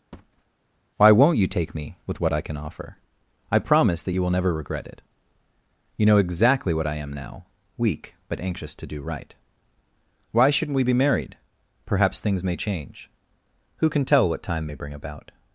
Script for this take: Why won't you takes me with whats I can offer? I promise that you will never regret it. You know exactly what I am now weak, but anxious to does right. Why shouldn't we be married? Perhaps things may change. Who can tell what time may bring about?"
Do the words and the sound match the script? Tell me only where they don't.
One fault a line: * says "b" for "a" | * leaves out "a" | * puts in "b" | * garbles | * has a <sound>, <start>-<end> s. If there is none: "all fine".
* has a thud, 0.1-0.4 s
* says "take" for "takes"
* says "what" for "whats"
* says "do" for "does"